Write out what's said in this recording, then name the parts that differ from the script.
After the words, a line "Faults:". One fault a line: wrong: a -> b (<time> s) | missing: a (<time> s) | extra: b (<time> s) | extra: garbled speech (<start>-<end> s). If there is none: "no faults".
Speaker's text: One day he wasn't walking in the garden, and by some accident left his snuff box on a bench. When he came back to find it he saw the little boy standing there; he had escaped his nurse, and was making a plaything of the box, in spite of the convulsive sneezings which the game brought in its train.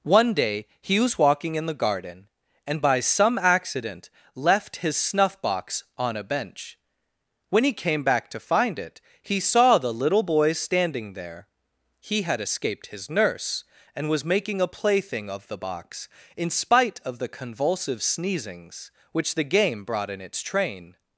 One day he was walking in the garden, and by some accident left his snuff box on a bench. When he came back to find it he saw the little boy standing there; he had escaped his nurse, and was making a plaything of the box, in spite of the convulsive sneezings which the game brought in its train.
Faults:
wrong: wasn't -> was (1.0 s)